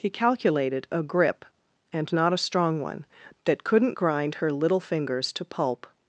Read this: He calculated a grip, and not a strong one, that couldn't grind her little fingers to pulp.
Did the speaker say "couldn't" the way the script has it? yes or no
yes